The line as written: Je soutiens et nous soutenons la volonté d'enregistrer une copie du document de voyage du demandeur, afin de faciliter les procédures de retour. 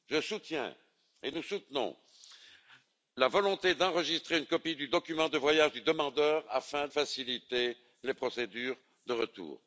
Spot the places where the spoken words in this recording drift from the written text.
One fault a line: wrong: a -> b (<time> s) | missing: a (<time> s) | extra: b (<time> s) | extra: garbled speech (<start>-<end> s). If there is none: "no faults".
missing: de (6.9 s)